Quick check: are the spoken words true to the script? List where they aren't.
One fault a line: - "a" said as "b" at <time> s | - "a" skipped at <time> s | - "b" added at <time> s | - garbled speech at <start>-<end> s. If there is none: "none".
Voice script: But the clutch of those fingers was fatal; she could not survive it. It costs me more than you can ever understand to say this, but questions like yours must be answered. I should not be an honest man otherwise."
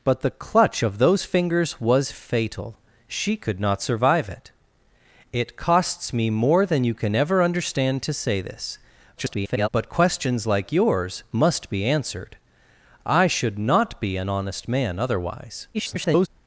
- garbled speech at 9.2-9.7 s
- garbled speech at 15.7-16.3 s